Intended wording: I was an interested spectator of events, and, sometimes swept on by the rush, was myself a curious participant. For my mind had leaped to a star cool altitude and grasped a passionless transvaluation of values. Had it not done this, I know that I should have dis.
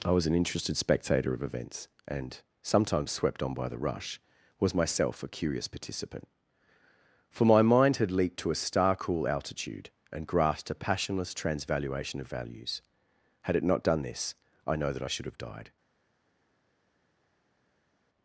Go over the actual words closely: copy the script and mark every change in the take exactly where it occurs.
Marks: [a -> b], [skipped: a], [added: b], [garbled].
I was an interested spectator of events, and, sometimes swept on by the rush, was myself a curious participant. For my mind had leaped to a star cool altitude and grasped a passionless transvaluation of values. Had it not done this, I know that I should have [dis. -> died]